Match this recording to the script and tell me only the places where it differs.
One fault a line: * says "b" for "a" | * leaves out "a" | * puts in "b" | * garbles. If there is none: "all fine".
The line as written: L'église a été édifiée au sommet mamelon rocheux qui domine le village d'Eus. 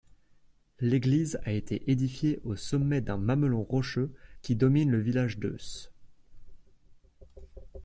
* puts in "d'un"